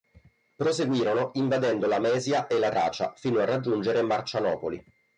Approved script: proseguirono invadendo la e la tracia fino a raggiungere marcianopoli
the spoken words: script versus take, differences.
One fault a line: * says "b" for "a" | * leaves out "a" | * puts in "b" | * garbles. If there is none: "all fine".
* puts in "mesia"